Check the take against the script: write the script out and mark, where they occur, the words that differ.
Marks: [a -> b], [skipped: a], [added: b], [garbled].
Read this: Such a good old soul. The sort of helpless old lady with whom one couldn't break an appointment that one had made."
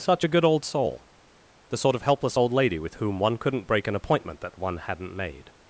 Such a good old soul. The sort of helpless old lady with whom one couldn't break an appointment that one [had -> hadn't] made."